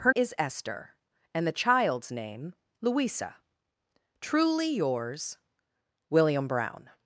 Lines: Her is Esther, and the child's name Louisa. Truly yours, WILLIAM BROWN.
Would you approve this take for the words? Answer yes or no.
yes